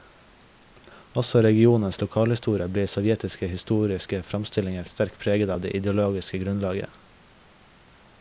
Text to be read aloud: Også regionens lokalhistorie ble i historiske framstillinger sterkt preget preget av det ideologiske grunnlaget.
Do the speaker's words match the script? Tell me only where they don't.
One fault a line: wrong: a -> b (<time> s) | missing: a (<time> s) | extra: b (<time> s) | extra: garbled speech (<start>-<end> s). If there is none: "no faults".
extra: sovjetiske (2.9 s)
missing: preget (5.5 s)